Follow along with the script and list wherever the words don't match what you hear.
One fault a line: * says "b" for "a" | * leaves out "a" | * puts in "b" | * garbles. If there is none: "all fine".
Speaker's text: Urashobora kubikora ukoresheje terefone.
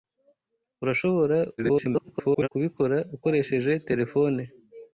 * garbles